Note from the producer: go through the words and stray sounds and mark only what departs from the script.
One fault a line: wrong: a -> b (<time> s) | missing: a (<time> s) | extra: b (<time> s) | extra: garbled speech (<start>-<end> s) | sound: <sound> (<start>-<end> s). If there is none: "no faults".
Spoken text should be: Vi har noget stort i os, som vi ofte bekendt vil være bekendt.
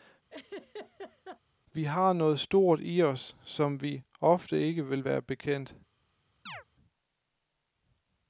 sound: laugh (0.3-1.4 s)
wrong: bekendt -> ikke (4.6 s)
sound: chirp (6.5-6.6 s)